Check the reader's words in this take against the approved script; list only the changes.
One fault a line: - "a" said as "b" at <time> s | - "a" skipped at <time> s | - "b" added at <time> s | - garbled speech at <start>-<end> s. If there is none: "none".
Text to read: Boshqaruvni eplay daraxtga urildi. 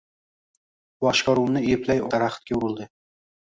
none